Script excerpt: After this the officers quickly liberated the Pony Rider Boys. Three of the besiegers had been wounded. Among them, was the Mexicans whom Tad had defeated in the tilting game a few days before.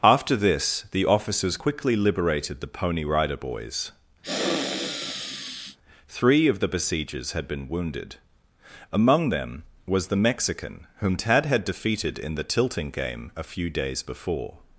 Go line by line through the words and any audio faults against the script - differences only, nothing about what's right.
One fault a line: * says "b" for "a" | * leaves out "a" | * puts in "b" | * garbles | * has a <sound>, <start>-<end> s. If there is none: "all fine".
* has a sniff, 4.2-5.8 s
* says "Mexican" for "Mexicans"